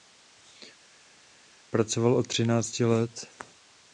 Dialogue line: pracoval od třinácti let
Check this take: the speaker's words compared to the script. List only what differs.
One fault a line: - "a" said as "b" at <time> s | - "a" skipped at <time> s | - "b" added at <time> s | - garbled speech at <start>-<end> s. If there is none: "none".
none